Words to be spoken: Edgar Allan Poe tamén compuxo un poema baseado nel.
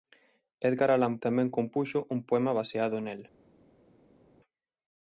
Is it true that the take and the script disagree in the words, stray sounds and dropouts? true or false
true